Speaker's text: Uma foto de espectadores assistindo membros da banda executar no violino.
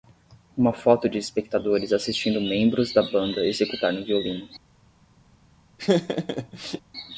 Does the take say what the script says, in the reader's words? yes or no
yes